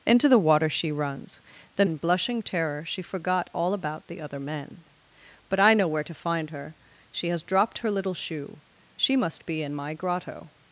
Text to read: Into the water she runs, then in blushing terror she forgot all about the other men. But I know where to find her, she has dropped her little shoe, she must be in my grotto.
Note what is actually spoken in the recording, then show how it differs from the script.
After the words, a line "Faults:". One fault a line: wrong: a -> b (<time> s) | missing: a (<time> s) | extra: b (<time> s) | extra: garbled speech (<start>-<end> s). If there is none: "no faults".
Into the water she runs, then in blushing terror she forgot all about the other men. But I know where to find her, she has dropped her little shoe, she must be in my grotto.
Faults:
no faults